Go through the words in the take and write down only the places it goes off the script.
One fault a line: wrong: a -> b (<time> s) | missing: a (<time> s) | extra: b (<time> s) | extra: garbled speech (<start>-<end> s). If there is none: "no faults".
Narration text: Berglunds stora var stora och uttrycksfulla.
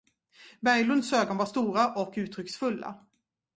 wrong: stora -> ögon (1.1 s)